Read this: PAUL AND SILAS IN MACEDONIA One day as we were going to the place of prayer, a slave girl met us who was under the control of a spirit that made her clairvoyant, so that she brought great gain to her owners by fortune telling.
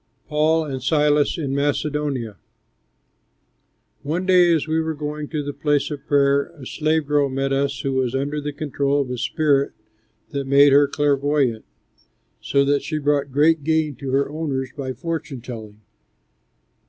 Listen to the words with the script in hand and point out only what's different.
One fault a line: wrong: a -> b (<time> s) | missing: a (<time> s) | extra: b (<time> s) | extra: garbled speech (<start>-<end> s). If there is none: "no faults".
no faults